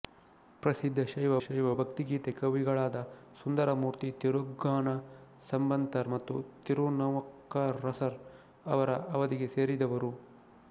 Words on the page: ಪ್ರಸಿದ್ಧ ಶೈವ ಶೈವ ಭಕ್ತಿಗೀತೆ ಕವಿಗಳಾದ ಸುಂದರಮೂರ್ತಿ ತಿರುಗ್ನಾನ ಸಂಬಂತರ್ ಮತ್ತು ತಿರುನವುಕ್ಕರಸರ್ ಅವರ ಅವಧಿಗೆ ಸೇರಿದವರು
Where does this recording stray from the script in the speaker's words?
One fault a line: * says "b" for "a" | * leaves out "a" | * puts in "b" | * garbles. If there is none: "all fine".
all fine